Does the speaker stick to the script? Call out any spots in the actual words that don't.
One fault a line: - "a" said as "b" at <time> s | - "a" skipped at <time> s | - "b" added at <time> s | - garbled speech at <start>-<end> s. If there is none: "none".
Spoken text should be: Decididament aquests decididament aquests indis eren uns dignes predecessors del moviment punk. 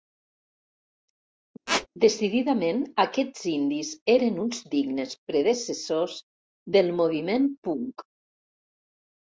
- "decididament aquests" skipped at 3.4 s